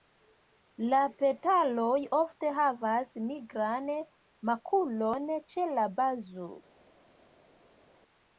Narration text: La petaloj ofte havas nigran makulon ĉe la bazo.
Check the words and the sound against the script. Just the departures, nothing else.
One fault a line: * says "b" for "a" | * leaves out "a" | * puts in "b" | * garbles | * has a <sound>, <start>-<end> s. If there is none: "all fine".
all fine